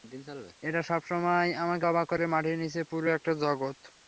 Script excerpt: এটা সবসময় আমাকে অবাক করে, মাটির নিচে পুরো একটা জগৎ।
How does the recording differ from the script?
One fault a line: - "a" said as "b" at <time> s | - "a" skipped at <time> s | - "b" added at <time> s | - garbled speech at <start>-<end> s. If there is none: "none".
none